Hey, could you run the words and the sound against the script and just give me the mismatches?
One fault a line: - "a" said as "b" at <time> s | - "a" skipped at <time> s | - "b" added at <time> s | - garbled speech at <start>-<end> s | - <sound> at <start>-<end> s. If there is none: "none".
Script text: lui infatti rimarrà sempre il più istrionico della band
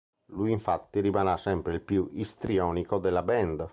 none